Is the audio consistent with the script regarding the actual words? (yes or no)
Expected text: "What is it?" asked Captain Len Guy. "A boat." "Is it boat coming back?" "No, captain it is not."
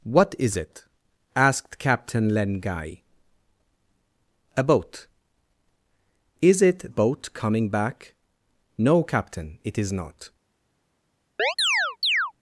yes